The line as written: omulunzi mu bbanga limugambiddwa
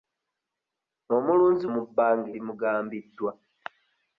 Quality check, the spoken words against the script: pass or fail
pass